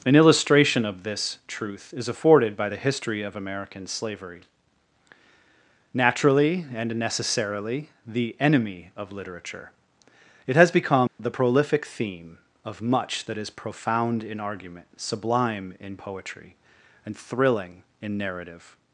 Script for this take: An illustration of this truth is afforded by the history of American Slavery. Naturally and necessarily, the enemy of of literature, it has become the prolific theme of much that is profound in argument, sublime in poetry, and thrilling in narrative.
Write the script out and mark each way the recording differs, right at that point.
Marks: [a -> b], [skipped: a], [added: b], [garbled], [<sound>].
An illustration of this truth is afforded by the history of American Slavery. Naturally and necessarily, the enemy of [skipped: of] literature, it has become [dropout] the prolific theme of much that is profound in argument, sublime in poetry, and thrilling in narrative.